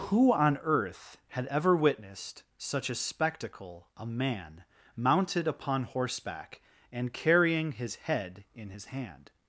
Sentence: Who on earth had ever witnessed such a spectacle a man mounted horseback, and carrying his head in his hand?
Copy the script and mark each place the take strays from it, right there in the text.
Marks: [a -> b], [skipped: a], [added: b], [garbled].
Who on earth had ever witnessed such a spectacle a man mounted [added: upon] horseback, and carrying his head in his hand?